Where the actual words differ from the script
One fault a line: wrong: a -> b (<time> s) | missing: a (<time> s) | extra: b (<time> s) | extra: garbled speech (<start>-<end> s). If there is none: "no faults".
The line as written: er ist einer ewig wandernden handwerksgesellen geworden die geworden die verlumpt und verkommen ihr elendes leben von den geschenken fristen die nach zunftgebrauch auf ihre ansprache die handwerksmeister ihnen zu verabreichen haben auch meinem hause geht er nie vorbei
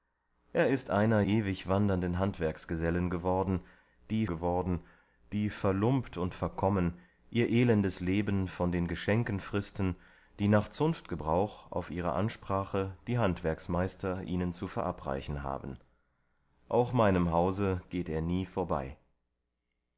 no faults